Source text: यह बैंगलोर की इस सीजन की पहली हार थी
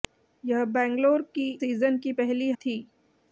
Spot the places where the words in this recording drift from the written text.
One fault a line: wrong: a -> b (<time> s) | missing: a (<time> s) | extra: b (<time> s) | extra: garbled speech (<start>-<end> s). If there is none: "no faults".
missing: इस (1.5 s)
missing: हार (2.5 s)